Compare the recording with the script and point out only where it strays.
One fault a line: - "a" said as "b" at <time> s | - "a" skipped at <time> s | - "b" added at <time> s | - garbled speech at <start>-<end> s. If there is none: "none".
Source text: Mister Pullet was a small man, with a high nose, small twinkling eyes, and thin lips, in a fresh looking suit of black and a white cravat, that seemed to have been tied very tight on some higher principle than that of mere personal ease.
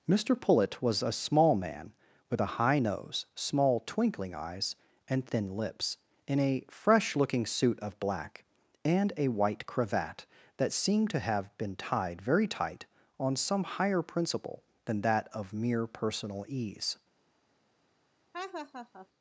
none